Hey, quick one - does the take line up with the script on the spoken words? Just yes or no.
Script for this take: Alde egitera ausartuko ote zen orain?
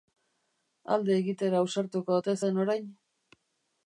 yes